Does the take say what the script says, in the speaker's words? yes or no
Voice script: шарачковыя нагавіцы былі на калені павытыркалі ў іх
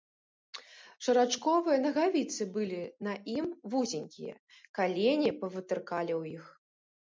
no